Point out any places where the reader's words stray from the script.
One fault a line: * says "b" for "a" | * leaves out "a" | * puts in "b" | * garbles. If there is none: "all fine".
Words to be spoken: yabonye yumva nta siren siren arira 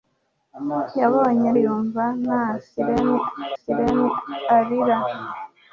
all fine